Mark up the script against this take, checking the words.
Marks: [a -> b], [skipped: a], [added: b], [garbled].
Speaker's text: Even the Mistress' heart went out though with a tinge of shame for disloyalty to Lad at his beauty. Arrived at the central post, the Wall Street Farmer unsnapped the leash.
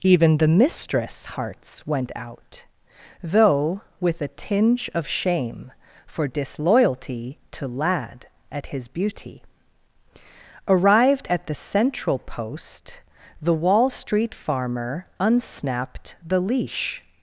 Even the Mistress' [heart -> hearts] went out though with a tinge of shame for disloyalty to Lad at his beauty. Arrived at the central post, the Wall Street Farmer unsnapped the leash.